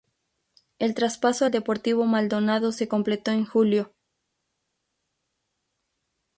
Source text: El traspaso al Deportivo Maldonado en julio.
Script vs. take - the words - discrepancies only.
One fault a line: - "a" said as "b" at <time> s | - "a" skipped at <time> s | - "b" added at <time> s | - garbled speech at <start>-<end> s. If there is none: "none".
- "se completó" added at 2.7 s